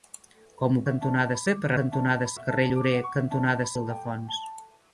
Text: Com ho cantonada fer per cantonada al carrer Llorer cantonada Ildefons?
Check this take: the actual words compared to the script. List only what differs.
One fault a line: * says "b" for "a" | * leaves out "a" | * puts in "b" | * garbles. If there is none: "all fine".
all fine